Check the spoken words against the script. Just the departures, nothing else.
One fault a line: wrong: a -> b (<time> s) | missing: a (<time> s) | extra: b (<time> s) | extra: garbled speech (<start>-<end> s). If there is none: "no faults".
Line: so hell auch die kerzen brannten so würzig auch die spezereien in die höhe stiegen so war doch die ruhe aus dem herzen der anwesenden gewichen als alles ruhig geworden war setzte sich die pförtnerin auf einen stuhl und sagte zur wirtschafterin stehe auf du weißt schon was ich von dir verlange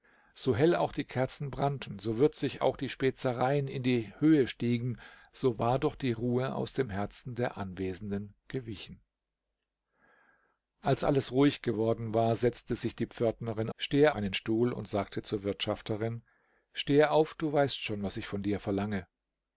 wrong: auf -> stehe (13.7 s)